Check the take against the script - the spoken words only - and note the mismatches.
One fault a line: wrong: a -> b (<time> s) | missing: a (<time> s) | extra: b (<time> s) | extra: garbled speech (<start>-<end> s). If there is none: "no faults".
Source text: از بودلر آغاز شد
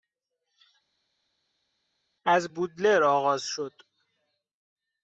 no faults